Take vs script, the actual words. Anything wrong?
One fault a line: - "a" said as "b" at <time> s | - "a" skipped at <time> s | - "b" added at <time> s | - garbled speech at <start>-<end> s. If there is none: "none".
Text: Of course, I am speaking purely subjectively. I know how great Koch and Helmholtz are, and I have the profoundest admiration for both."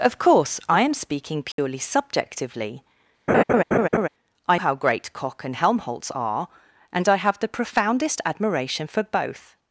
- "know" skipped at 4.6 s